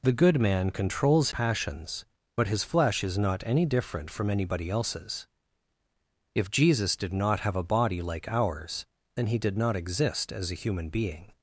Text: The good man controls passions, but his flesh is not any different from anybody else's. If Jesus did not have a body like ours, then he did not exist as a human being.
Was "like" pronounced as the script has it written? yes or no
yes